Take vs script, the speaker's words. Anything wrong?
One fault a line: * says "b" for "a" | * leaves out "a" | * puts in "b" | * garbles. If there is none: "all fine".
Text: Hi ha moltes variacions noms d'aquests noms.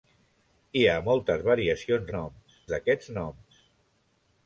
all fine